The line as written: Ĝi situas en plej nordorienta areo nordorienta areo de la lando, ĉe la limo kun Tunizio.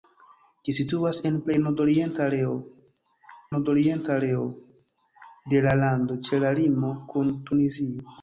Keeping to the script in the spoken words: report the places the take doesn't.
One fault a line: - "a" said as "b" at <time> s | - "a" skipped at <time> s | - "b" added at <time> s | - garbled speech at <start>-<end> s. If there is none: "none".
none